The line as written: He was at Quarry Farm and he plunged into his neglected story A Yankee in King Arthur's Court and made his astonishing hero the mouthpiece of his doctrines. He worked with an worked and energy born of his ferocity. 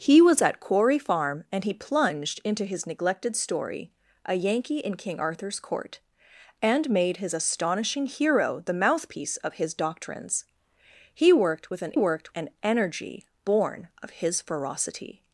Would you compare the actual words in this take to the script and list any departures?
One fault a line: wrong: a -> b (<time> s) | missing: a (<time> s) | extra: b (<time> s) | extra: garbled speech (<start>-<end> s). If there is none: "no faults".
no faults